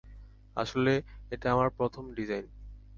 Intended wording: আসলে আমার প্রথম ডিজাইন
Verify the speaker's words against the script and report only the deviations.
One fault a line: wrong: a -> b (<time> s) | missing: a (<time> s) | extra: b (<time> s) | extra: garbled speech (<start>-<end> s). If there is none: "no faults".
extra: এটা (1.3 s)